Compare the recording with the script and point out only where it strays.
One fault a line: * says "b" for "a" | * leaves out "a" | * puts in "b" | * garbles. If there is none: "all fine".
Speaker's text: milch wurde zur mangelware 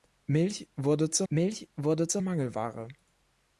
* puts in "milch wurde zur"